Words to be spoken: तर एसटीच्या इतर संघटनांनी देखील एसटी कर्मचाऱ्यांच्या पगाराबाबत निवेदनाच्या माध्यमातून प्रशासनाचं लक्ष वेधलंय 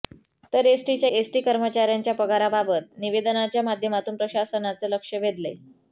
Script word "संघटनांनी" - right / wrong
wrong